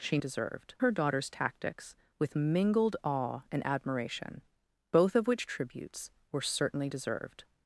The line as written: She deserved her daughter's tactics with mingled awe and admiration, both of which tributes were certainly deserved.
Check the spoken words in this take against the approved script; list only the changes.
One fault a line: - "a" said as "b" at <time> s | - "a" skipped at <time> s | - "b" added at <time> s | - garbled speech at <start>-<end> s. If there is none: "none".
none